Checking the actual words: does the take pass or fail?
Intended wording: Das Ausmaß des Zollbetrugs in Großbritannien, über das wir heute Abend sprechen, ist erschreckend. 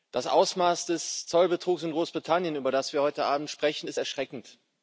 pass